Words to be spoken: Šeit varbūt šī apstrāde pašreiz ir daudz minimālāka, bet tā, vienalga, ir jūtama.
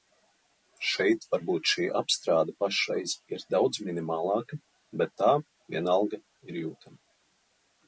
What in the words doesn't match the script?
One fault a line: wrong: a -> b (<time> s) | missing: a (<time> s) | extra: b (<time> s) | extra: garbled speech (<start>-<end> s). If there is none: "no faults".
no faults